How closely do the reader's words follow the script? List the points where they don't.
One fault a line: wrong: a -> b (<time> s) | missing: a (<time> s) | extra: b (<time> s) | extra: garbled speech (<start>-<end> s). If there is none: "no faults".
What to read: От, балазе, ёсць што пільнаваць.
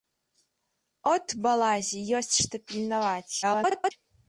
extra: garbled speech (3.4-3.9 s)